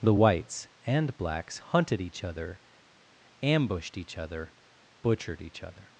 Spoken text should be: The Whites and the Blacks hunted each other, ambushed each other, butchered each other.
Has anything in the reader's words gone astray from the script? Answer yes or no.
yes